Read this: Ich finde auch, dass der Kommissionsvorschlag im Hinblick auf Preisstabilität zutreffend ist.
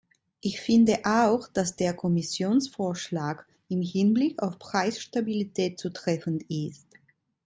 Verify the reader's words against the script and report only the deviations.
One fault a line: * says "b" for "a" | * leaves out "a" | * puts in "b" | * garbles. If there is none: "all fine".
all fine